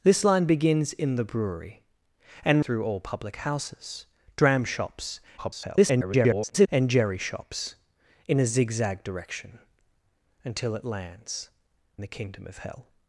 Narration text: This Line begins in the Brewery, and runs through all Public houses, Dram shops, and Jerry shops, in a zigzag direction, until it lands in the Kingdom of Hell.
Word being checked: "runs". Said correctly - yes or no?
no